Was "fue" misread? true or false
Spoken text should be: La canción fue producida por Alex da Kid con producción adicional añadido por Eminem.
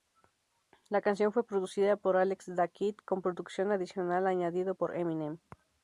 false